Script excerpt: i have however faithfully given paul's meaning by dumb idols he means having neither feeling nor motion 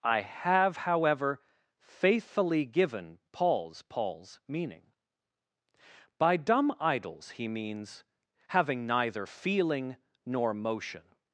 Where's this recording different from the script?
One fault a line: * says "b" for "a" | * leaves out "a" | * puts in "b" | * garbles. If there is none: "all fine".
* puts in "paul's"